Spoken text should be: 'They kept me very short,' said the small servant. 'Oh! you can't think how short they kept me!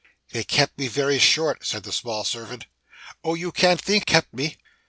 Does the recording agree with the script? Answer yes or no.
no